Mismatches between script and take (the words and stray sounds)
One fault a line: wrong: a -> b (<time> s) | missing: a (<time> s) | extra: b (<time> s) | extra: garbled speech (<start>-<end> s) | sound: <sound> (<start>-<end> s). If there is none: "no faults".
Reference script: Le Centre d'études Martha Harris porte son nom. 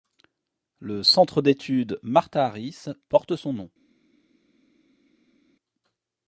no faults